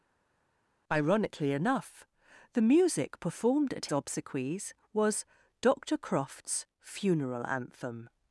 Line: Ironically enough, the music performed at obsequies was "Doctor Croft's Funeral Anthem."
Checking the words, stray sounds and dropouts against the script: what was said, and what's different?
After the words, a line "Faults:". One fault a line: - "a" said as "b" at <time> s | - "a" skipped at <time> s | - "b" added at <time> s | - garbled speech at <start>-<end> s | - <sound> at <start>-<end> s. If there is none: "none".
Ironically enough, the music performed at obsequies was "Doctor Croft's Funeral Anthem."
Faults:
none